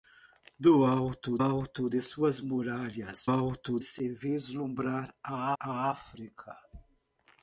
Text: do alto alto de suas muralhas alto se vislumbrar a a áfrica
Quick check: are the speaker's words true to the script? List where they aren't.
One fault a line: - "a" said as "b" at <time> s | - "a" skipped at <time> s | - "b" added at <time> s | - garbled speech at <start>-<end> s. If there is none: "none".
none